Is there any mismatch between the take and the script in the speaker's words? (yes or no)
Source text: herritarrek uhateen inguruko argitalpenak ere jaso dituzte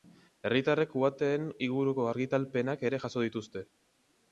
no